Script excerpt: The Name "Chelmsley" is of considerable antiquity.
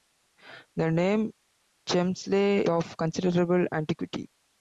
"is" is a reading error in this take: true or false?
true